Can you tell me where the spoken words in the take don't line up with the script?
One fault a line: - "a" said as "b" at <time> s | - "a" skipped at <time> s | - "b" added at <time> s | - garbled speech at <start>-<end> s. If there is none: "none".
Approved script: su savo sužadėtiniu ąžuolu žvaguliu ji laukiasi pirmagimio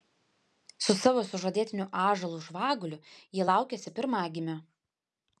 none